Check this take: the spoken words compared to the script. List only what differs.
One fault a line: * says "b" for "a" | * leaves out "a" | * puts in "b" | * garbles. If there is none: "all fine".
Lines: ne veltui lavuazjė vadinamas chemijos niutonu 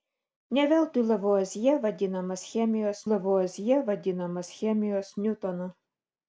* puts in "lavuazjė vadinamas chemijos"